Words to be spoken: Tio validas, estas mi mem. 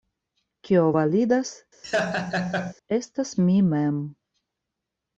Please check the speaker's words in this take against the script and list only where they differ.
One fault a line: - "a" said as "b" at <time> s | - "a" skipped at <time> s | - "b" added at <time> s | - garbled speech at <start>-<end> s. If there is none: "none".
- "Tio" said as "Kio" at 0.7 s